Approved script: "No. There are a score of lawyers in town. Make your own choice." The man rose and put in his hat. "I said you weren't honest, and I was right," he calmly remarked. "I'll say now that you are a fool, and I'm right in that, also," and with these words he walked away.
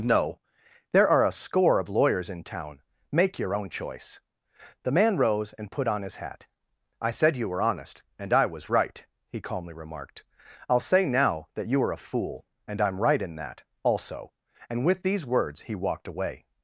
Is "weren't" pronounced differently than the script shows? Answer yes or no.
yes